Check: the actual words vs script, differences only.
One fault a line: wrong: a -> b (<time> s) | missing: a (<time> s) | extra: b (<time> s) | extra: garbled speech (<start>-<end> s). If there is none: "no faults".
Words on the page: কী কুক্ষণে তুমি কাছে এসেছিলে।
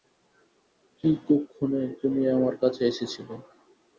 extra: আমার (2.4 s)